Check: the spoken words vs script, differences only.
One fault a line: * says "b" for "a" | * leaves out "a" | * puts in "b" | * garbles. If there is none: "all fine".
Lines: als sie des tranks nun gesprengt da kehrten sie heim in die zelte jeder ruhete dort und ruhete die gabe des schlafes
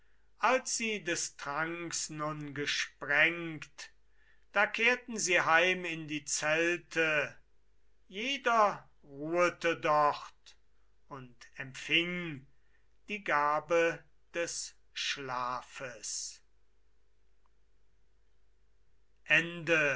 * says "empfing" for "ruhete"